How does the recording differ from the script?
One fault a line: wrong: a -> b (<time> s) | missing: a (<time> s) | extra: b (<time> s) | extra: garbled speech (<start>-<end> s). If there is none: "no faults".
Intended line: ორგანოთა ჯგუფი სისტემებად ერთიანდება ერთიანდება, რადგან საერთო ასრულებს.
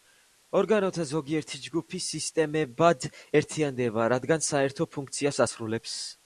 extra: ზოგიერთი (1.1 s)
missing: ერთიანდება (4.1 s)
extra: ფუნქციას (5.0 s)